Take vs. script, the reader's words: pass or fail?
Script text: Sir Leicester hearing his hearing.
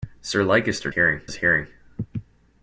pass